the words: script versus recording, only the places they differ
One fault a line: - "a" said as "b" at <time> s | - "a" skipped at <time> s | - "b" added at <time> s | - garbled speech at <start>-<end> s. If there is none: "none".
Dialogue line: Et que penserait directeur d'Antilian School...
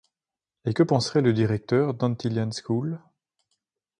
- "le" added at 1.2 s